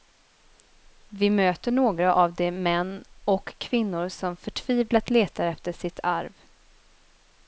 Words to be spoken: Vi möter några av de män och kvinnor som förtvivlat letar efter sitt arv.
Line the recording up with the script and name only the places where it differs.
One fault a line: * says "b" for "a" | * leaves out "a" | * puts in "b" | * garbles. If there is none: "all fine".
all fine